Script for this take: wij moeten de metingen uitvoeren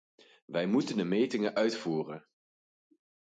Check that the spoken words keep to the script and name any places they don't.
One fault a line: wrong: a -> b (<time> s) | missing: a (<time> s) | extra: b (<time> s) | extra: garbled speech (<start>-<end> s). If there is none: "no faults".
no faults